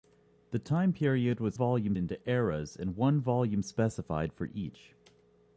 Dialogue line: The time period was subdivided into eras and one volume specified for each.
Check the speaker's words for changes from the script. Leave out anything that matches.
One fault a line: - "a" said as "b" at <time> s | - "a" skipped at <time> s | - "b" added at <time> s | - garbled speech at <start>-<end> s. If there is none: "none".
- "subdivided" said as "volume" at 1.5 s